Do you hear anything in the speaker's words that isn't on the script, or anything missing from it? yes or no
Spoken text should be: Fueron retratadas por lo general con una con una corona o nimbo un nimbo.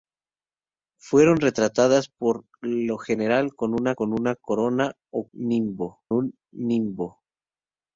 no